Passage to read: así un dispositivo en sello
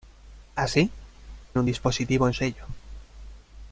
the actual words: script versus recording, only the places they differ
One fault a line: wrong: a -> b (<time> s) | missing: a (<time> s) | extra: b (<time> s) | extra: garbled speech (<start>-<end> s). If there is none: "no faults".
no faults